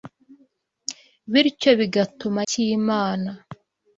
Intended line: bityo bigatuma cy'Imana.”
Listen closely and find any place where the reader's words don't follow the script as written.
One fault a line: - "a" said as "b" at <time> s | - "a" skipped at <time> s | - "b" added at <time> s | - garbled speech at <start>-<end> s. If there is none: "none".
none